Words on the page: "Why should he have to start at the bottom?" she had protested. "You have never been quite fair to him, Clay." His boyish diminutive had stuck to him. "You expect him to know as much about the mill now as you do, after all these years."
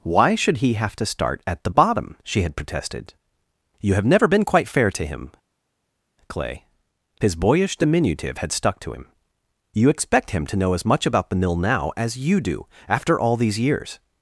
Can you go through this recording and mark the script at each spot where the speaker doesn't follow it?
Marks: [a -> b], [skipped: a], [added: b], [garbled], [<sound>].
"Why should he have to start at the bottom?" she had protested. "You have never been quite fair to him, Clay." His boyish diminutive had stuck to him. "You expect him to know as much about the mill now as you do, after all these years."